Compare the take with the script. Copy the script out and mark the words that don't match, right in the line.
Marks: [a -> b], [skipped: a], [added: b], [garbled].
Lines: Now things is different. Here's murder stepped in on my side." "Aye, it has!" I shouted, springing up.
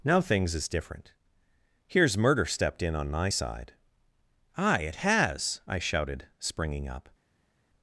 Now things is different. Here's murder stepped in on my side." "Aye, it has!" I shouted, springing up.